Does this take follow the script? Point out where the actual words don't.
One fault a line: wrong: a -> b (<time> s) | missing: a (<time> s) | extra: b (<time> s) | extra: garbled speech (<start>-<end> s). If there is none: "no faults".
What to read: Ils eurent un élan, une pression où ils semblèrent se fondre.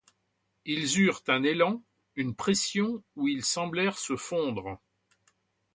no faults